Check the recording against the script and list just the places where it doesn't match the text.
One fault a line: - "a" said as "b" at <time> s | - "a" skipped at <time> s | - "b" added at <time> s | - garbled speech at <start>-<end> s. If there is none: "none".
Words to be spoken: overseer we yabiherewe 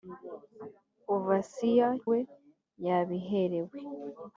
none